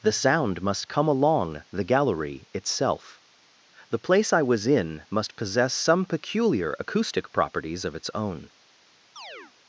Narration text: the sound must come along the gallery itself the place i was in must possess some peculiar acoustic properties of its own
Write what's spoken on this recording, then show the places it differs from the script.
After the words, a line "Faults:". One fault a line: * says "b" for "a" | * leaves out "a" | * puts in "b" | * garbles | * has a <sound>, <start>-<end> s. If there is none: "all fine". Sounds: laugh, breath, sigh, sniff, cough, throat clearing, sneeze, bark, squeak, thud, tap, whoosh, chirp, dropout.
the sound must come along the gallery itself the place i was in must possess some peculiar acoustic properties of its own
Faults:
* has a chirp, 9.2-9.5 s